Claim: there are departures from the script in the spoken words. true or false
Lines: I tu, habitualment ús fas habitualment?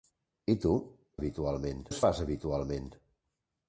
false